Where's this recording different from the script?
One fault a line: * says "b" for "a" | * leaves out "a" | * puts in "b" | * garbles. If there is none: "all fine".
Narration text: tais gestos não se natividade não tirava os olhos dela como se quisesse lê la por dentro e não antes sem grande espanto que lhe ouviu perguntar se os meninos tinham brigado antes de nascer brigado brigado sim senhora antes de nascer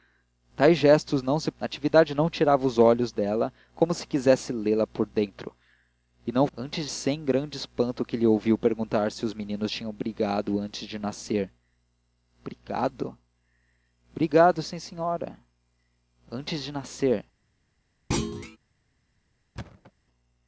all fine